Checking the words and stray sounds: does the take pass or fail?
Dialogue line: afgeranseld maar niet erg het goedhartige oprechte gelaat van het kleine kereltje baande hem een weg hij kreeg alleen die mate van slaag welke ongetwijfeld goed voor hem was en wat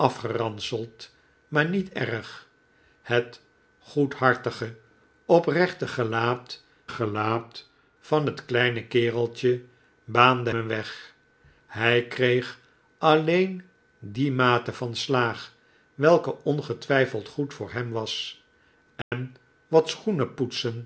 fail